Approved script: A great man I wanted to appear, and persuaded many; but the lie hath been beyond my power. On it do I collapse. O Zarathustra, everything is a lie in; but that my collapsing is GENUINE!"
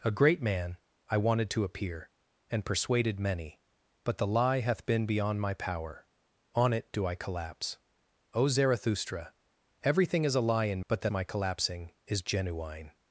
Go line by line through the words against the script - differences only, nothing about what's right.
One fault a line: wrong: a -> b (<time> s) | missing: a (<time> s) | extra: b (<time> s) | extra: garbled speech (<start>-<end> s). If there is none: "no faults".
no faults